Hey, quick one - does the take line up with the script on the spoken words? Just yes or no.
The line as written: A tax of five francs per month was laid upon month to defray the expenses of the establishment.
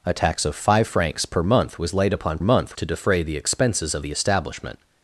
yes